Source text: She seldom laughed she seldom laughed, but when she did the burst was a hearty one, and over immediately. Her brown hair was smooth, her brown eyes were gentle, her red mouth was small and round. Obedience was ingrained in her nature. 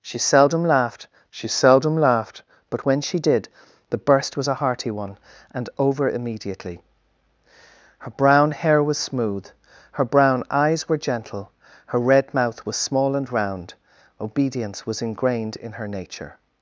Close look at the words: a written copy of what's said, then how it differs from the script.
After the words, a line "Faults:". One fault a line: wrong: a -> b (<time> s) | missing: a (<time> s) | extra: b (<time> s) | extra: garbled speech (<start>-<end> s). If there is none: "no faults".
She seldom laughed she seldom laughed, but when she did the burst was a hearty one, and over immediately. Her brown hair was smooth, her brown eyes were gentle, her red mouth was small and round. Obedience was ingrained in her nature.
Faults:
no faults